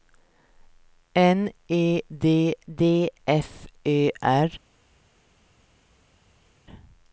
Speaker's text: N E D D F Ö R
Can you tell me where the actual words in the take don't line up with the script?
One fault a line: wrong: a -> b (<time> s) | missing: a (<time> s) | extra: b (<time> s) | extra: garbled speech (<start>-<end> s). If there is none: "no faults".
no faults